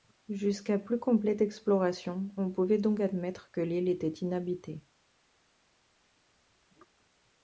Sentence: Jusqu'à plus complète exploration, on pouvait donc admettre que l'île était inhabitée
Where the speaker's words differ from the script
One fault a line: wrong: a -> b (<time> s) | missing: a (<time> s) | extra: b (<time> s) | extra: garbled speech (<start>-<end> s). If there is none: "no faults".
no faults